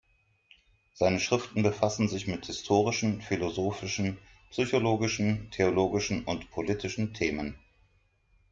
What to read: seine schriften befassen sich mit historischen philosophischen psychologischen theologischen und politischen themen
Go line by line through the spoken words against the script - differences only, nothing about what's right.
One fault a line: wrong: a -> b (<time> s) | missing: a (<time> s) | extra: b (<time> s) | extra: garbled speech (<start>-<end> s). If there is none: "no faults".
no faults